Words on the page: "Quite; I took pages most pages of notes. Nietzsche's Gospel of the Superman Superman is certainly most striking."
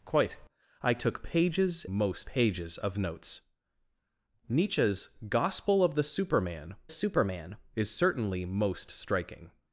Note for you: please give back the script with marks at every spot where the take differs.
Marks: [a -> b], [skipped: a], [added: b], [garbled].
"Quite; I took pages most pages of notes. Nietzsche's Gospel of the Superman Superman is certainly most striking."